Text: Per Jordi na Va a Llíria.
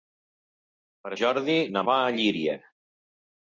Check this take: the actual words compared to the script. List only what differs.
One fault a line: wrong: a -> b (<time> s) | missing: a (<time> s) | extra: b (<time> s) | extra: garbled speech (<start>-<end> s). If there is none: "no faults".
no faults